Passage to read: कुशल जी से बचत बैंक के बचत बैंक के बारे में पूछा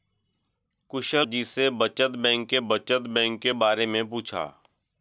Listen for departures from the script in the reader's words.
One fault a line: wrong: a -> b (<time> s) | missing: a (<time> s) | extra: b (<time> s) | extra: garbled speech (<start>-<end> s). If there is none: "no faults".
no faults